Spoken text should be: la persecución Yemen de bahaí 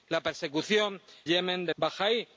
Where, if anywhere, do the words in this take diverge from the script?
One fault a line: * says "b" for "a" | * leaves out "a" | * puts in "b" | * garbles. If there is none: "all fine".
all fine